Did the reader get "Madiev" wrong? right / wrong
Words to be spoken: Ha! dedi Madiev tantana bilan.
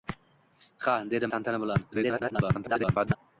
wrong